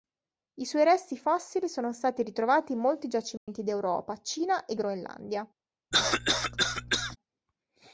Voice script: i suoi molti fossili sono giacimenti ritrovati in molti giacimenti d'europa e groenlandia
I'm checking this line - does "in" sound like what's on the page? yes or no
yes